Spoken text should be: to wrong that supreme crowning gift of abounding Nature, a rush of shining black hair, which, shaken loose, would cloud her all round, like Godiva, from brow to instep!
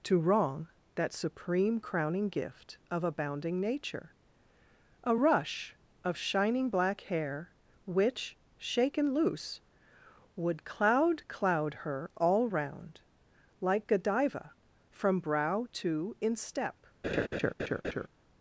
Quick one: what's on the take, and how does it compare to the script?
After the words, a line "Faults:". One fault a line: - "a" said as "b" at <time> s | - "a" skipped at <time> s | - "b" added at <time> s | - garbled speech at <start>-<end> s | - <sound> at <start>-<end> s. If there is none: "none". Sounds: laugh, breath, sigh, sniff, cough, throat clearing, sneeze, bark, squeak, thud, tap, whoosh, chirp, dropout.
to wrong that supreme crowning gift of abounding Nature, a rush of shining black hair, which, shaken loose, would cloud cloud her all round, like Godiva, from brow to instep!
Faults:
- "cloud" added at 11.3 s
- laugh at 17.0-18.1 s